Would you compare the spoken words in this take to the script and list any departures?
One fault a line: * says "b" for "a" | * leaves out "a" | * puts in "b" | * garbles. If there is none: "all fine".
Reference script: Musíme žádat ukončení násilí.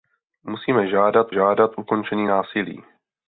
* puts in "žádat"